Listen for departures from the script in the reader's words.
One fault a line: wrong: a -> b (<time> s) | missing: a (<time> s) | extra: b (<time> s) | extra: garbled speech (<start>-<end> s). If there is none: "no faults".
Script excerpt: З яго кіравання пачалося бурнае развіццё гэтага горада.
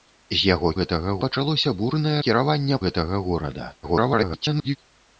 wrong: кіравання -> гэтага (0.8 s)
wrong: развіццё -> кіравання (2.2 s)
extra: garbled speech (3.8-4.8 s)